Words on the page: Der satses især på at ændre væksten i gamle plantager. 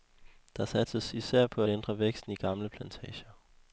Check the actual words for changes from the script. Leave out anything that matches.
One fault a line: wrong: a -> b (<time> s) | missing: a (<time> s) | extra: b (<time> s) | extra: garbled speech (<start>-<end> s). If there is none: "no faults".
missing: at (1.6 s)